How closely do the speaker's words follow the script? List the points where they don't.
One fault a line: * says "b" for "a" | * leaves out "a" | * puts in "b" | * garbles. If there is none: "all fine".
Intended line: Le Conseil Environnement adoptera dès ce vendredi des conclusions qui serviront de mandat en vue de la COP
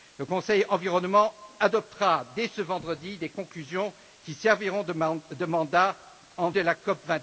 * leaves out "vue"